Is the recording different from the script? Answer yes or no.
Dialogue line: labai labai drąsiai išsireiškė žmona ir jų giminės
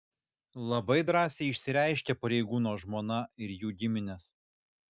yes